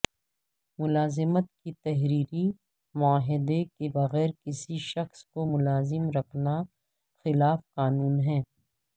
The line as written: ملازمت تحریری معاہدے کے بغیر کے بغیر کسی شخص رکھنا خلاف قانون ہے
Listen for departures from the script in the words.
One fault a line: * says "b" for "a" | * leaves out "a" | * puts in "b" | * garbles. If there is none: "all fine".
* puts in "کے"
* says "کسی شخص کو ملازم" for "کے بغیر کسی شخص"